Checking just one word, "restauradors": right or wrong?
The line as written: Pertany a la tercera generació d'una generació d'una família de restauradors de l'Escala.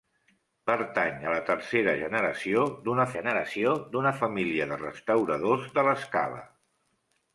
right